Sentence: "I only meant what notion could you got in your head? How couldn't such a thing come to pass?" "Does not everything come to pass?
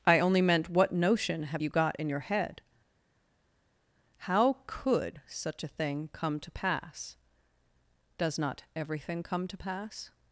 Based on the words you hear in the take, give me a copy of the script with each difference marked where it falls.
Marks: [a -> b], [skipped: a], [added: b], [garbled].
"I only meant what notion [could -> have] you got in your head? How [couldn't -> could] such a thing come to pass?" "Does not everything come to pass?